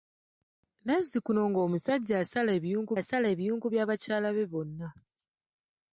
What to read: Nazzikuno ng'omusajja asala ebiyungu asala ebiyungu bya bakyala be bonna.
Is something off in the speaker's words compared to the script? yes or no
no